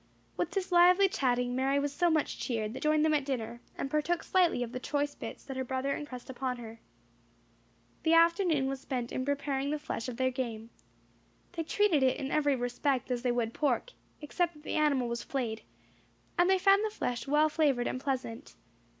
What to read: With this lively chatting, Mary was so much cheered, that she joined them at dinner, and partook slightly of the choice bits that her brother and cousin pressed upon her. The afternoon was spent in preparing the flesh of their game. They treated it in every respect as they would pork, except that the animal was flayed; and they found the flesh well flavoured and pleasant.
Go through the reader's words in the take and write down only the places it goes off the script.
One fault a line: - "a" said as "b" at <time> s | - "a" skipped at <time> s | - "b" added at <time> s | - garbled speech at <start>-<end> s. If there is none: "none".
- "she" skipped at 2.8 s
- "cousin" skipped at 6.1 s